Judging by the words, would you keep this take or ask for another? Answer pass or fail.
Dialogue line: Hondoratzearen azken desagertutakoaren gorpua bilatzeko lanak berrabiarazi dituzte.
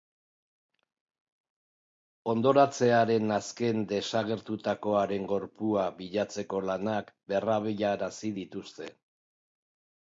pass